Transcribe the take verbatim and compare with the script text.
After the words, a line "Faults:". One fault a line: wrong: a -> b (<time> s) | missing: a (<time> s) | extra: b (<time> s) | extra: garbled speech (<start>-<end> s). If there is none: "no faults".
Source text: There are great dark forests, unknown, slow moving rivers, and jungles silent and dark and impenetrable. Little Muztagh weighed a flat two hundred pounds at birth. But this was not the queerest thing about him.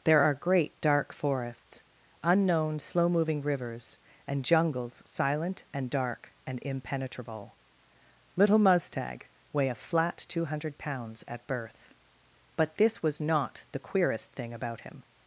There are great dark forests, unknown, slow moving rivers, and jungles silent and dark and impenetrable. Little Muztagh weigh a flat two hundred pounds at birth. But this was not the queerest thing about him.
Faults:
wrong: weighed -> weigh (9.5 s)